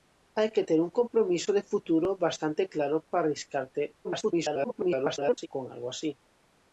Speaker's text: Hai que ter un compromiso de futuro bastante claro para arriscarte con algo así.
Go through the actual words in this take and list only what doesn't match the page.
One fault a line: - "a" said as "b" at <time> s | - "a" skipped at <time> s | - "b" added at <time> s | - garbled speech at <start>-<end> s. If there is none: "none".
- garbled speech at 4.0-5.5 s